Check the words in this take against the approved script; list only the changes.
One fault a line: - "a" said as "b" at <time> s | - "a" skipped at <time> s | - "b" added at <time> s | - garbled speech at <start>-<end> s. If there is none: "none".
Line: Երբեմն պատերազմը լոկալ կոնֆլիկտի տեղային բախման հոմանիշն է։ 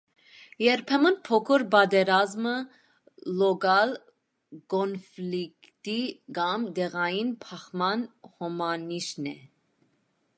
- "փոքր" added at 1.3 s
- "կամ" added at 6.4 s